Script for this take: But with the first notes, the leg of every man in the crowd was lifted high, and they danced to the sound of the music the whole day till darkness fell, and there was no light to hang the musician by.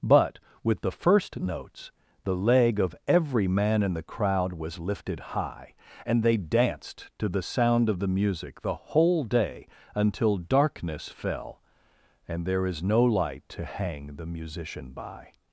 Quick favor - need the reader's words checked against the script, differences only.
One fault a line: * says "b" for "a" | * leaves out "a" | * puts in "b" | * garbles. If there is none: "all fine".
* says "until" for "till"
* says "is" for "was"